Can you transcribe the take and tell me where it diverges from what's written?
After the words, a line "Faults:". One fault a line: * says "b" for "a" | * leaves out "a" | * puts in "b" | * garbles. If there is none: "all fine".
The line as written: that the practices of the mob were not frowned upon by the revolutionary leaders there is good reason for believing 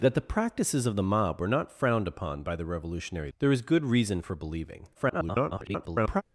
that the practices of the mob were not frowned upon by the revolutionary there is good reason for believing [garbled]
Faults:
* leaves out "leaders"
* garbles